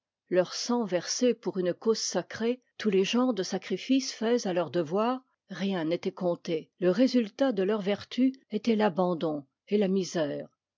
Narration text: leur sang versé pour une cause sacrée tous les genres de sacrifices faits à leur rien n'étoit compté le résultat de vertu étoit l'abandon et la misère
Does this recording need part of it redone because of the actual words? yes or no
yes